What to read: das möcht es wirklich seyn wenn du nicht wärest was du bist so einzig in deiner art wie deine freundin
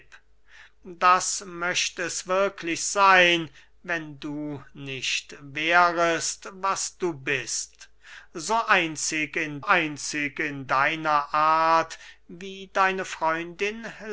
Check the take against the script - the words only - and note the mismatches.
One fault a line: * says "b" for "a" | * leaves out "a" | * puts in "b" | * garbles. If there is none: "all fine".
* puts in "einzig in"